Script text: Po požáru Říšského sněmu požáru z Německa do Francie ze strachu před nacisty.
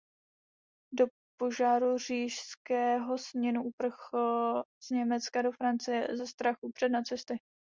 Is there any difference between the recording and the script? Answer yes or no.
yes